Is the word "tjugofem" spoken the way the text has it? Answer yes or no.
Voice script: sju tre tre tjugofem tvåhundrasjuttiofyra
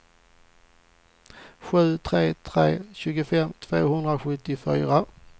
yes